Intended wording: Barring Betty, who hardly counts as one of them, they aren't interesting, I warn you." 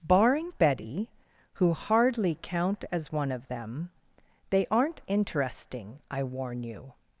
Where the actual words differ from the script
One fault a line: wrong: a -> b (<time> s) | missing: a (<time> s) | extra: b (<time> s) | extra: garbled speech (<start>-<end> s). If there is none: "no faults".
wrong: counts -> count (2.4 s)